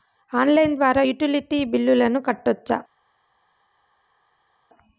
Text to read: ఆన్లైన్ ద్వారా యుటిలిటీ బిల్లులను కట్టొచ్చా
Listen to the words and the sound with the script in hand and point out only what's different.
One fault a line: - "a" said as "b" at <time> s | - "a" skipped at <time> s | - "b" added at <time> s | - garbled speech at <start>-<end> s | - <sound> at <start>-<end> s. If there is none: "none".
none